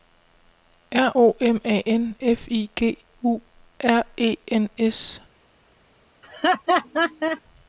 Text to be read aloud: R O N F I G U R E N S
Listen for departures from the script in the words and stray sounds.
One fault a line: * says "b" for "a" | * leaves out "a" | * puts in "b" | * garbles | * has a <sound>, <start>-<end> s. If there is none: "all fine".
* puts in "M A"
* has a laugh, 6.2-7.4 s